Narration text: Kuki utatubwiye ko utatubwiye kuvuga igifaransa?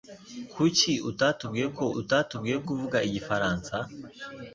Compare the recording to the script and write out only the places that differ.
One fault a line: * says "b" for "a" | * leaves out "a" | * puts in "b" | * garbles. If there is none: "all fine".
all fine